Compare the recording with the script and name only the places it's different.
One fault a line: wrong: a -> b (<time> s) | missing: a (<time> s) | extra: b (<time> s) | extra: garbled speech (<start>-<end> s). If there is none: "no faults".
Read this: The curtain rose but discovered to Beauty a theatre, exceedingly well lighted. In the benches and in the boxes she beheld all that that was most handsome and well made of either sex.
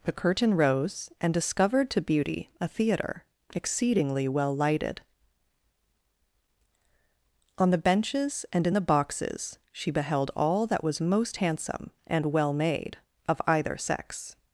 wrong: but -> and (1.2 s)
wrong: In -> On (7.6 s)
missing: that (10.8 s)